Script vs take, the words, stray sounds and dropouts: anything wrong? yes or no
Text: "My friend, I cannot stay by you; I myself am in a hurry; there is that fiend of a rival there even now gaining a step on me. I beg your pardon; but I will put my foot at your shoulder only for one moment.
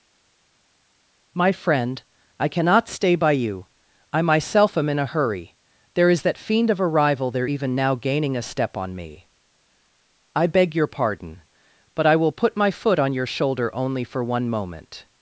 yes